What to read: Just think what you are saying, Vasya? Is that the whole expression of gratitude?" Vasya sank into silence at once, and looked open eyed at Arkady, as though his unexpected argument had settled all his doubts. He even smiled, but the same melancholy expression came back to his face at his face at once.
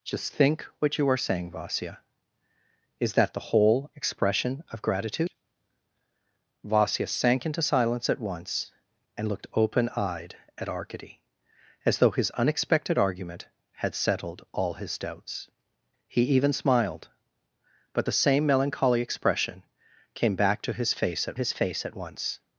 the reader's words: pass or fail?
pass